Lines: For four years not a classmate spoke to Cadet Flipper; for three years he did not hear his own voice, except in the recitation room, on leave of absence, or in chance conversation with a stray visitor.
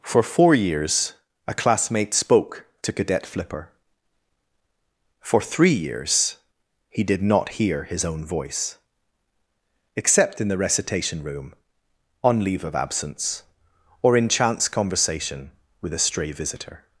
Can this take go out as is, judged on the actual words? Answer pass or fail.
fail